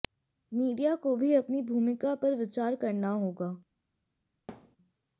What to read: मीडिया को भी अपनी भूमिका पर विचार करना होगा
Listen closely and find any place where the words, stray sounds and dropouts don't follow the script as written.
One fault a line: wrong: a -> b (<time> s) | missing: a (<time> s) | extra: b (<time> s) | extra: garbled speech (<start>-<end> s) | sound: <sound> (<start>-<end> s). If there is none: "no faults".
sound: thud (4.5-4.8 s)